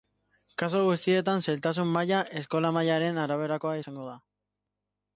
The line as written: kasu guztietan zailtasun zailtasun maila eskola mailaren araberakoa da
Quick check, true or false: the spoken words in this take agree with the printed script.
false